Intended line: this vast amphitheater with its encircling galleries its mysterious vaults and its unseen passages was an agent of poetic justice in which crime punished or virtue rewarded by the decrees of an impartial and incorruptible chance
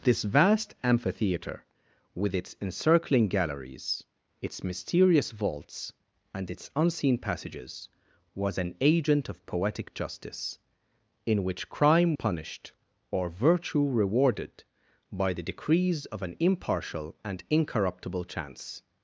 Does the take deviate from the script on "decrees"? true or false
false